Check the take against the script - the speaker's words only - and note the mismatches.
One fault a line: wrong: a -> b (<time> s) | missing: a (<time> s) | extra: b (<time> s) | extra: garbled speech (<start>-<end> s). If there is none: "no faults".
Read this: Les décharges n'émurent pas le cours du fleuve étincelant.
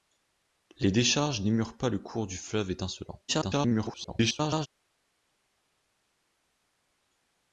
extra: garbled speech (3.3-4.7 s)